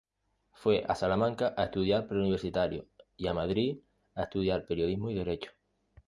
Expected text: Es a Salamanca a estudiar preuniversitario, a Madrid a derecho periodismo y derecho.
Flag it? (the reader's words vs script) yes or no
yes